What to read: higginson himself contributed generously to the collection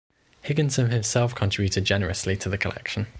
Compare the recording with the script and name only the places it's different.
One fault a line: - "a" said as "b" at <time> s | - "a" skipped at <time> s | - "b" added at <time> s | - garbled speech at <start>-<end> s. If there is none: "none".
none